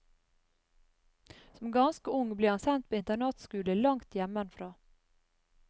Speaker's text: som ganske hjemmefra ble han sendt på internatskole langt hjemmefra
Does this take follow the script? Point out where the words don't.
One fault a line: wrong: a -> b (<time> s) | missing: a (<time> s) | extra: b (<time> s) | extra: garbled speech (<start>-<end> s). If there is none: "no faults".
wrong: hjemmefra -> ung (2.1 s)